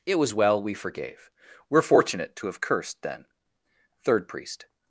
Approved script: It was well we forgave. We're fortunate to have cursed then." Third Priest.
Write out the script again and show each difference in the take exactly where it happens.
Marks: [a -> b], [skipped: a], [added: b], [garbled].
It was well we forgave. We're fortunate to have cursed then." Third Priest.